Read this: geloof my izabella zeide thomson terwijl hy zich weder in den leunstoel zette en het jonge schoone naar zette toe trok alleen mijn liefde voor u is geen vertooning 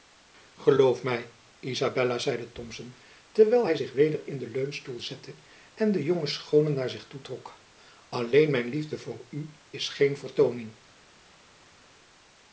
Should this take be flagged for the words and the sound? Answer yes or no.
yes